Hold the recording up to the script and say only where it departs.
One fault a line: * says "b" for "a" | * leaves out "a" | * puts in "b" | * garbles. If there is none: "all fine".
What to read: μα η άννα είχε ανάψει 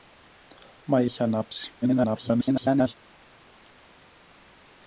* leaves out "άννα"
* garbles